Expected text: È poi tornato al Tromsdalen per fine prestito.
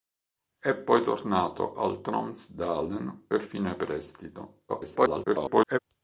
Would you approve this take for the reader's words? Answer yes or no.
no